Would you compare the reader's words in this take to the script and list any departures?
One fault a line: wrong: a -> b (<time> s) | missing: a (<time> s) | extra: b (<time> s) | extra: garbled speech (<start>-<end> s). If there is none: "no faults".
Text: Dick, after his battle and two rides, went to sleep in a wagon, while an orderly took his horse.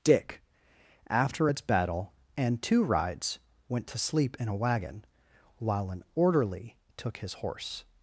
wrong: his -> its (1.5 s)